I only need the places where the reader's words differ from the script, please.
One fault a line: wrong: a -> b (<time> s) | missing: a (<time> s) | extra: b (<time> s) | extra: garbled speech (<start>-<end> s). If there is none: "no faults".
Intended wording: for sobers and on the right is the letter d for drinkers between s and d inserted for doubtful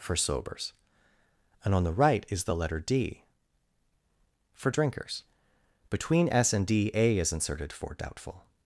extra: a is (7.0 s)